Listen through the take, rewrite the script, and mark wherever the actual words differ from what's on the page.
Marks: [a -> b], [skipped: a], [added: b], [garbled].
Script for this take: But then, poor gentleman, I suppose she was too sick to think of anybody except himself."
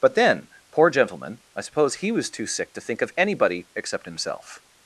But then, poor gentleman, I suppose [she -> he] was too sick to think of anybody except himself."